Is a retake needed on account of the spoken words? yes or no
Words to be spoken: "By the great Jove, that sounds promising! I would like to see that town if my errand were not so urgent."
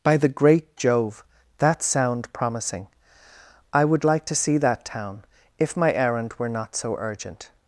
yes